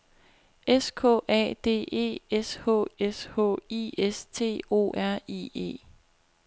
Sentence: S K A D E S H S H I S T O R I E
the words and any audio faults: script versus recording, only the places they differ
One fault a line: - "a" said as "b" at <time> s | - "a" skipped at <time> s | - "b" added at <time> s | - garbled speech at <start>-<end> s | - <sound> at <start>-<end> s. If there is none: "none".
none